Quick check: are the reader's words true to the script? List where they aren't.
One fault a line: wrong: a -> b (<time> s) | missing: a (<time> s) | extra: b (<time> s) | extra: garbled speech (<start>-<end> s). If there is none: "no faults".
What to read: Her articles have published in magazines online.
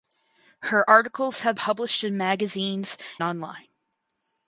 no faults